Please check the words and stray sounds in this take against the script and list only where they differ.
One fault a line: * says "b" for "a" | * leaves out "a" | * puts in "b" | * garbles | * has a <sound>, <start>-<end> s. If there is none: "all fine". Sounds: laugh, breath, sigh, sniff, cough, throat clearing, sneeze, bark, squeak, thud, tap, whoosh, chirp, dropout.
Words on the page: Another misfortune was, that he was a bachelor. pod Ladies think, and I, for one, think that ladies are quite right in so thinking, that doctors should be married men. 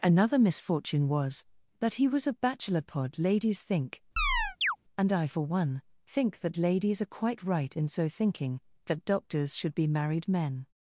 * has a chirp, 4.2-4.8 s